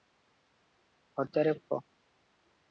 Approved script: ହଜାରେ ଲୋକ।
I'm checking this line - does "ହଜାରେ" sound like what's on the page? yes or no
yes